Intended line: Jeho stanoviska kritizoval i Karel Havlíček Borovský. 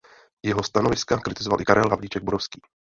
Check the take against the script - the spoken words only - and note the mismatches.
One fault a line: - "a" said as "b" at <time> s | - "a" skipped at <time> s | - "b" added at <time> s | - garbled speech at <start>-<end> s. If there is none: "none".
none